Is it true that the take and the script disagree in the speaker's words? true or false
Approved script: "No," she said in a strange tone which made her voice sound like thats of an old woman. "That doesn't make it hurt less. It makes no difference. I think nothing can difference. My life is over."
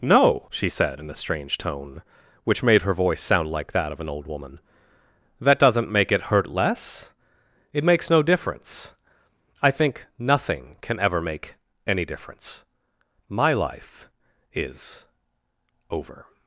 true